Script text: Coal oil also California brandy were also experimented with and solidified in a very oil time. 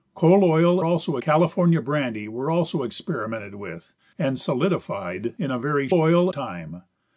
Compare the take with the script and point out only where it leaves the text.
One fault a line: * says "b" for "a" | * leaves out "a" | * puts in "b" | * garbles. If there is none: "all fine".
all fine